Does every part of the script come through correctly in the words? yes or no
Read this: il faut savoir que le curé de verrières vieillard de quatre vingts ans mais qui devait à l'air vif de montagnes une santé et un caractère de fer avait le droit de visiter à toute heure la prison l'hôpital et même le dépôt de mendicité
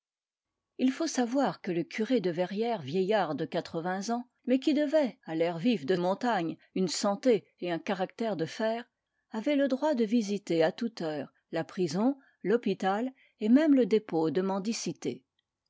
yes